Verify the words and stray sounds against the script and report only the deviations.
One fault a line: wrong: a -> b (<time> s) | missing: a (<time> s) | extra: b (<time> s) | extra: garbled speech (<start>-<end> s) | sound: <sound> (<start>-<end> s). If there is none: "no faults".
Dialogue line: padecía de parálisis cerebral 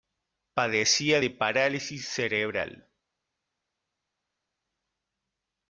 no faults